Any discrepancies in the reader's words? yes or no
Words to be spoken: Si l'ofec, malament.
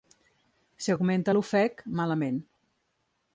yes